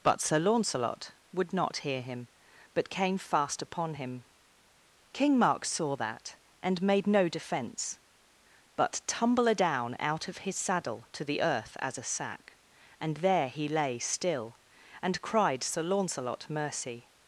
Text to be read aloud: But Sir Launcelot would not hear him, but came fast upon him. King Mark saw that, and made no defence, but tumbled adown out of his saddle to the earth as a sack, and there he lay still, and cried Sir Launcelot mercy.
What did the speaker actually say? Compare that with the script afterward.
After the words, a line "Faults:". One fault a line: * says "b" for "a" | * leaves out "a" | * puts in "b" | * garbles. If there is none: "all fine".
But Sir Launcelot would not hear him, but came fast upon him. King Mark saw that, and made no defence, but tumble adown out of his saddle to the earth as a sack, and there he lay still, and cried Sir Launcelot mercy.
Faults:
* says "tumble" for "tumbled"